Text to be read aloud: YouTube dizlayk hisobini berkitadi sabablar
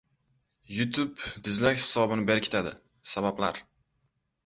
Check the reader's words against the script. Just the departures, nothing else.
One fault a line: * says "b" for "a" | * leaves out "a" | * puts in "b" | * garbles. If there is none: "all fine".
all fine